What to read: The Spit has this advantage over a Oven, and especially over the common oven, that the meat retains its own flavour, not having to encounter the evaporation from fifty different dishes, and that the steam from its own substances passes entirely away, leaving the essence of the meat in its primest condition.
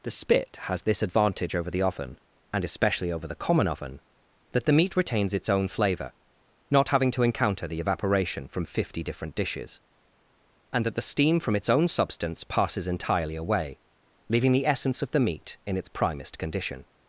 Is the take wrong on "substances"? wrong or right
wrong